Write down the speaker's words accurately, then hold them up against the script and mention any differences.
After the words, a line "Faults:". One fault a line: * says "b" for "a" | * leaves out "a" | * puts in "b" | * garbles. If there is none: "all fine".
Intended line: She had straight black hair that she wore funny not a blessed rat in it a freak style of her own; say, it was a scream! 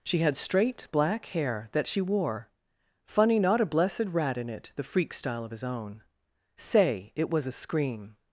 She had straight black hair that she wore funny not a blessed rat in it the freak style of his own; say, it was a scream!
Faults:
* says "the" for "a"
* says "his" for "her"